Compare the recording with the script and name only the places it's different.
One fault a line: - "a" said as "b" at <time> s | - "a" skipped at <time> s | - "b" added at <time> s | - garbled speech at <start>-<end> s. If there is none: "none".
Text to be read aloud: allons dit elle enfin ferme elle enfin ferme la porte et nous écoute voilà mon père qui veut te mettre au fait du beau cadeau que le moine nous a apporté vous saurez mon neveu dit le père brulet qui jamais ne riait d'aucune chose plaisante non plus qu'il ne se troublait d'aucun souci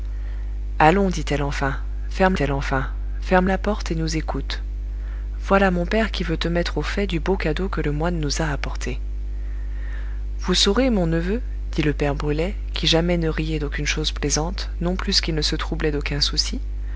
none